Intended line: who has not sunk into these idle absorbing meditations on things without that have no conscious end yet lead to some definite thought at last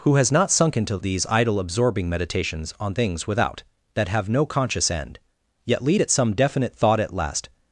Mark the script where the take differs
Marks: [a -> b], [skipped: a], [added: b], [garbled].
who has not sunk into these idle absorbing meditations on things without that have no conscious end yet lead [to -> at] some definite thought at last